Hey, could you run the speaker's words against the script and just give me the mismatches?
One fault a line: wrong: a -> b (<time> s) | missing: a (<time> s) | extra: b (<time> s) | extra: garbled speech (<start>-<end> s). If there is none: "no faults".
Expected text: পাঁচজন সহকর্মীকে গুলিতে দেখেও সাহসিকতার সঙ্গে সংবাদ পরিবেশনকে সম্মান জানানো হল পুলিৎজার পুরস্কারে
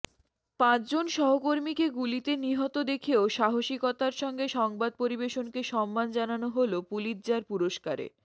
extra: নিহত (2.4 s)